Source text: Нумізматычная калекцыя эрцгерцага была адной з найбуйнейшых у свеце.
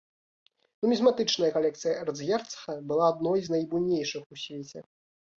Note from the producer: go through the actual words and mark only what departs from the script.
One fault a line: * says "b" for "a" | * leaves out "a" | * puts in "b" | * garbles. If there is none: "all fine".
all fine